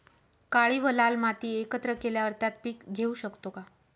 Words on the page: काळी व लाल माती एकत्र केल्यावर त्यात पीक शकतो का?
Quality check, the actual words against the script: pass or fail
fail